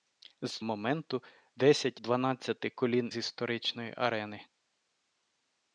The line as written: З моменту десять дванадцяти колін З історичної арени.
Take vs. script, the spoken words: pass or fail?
pass